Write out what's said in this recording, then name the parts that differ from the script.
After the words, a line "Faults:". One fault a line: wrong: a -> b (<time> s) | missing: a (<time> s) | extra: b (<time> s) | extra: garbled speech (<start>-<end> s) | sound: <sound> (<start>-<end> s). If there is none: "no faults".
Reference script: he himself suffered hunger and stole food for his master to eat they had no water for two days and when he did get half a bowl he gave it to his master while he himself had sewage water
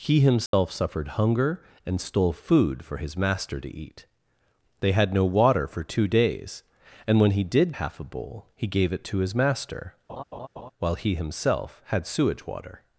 he himself suffered hunger and stole food for his master to eat they had no water for two days and when he did half a bowl he gave it to his master while he himself had sewage water
Faults:
sound: dropout (0.5-0.5 s)
missing: get (7.7 s)
sound: laugh (10.1-10.7 s)